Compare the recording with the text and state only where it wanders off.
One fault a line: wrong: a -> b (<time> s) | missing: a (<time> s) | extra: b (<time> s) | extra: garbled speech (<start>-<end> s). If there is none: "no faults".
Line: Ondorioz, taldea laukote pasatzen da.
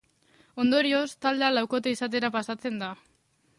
extra: izatera (2.0 s)